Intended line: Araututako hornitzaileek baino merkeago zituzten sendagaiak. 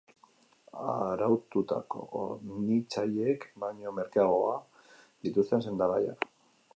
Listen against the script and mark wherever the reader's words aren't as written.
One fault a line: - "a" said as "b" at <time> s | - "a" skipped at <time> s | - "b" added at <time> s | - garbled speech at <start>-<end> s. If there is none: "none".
none